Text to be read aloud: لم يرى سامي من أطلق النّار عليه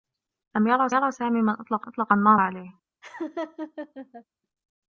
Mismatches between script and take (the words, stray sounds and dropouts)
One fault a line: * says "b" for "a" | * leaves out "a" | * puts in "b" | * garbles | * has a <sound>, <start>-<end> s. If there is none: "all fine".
* puts in "يرى"
* puts in "أطلق"
* has a laugh, 3.0-4.2 s